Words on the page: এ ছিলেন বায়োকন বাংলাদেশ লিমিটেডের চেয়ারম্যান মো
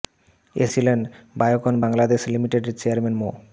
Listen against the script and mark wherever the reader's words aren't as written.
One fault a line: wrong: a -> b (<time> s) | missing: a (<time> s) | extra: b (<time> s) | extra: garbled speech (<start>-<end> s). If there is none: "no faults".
no faults